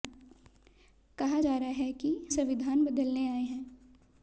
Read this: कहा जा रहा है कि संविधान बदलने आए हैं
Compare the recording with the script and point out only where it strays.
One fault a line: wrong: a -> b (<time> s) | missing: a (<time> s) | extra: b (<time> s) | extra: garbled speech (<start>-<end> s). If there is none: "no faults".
no faults